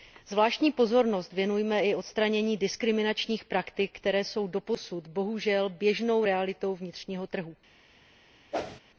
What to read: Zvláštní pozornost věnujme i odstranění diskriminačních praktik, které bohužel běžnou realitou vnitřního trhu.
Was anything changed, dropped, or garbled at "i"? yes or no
no